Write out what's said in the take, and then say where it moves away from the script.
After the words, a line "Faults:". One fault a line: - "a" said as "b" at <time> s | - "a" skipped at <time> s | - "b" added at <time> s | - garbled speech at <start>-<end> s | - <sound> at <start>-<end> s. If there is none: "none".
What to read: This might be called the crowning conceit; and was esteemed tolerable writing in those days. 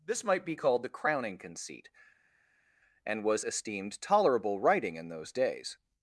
This might be called the crowning conceit; and was esteemed tolerable writing in those days.
Faults:
none